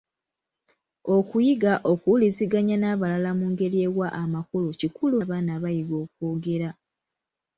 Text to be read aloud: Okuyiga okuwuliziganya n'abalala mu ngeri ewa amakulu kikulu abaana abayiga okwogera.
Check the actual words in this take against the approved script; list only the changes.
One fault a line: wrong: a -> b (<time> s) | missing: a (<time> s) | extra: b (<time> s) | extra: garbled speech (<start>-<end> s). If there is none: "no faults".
no faults